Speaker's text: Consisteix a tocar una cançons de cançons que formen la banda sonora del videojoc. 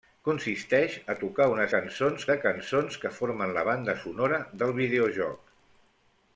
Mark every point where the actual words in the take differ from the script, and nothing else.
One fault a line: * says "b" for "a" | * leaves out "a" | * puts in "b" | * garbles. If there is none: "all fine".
all fine